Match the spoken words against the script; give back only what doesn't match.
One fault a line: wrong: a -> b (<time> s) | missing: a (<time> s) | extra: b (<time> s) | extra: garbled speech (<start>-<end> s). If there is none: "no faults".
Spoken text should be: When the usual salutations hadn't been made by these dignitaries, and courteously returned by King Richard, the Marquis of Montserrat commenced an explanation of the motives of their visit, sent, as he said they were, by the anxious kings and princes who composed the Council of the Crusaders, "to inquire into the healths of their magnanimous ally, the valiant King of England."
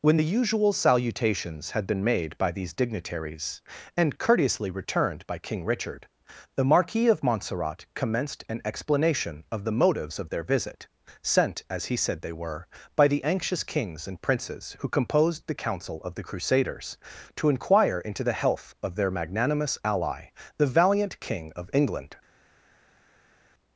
wrong: hadn't -> had (1.7 s)
wrong: healths -> health (18.4 s)